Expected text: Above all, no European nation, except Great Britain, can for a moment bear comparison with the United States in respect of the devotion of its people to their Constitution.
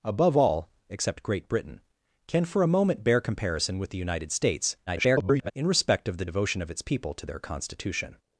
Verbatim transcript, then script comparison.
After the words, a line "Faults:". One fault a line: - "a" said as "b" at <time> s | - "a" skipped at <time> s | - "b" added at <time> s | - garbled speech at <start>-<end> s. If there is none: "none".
Above all, except Great Britain, can for a moment bear comparison with the United States [garbled] in respect of the devotion of its people to their Constitution.
Faults:
- "no European nation" skipped at 0.7 s
- garbled speech at 4.9-5.5 s